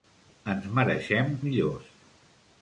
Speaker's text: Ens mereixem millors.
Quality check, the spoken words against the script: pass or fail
pass